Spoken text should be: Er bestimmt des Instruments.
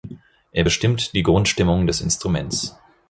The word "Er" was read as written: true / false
true